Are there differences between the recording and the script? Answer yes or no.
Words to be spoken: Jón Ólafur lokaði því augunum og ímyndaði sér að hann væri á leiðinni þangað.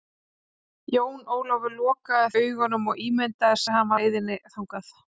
yes